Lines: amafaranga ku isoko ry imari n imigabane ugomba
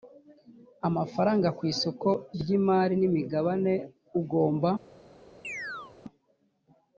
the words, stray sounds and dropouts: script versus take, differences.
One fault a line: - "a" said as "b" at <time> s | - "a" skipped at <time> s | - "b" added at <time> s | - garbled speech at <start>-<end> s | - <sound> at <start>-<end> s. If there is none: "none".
- chirp at 5.4-5.9 s